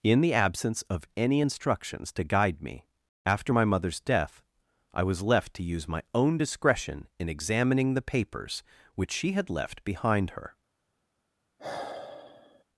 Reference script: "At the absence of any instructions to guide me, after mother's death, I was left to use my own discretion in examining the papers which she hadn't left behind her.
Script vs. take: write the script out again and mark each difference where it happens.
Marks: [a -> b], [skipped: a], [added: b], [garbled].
["At -> In] the absence of any instructions to guide me, after [added: my] mother's death, I was left to use my own discretion in examining the papers which she [hadn't -> had] left behind her.